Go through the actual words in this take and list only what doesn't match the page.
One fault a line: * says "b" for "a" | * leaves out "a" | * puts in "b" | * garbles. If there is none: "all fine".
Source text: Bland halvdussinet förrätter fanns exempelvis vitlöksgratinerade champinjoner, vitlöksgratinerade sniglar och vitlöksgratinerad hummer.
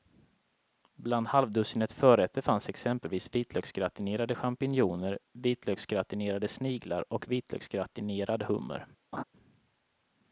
all fine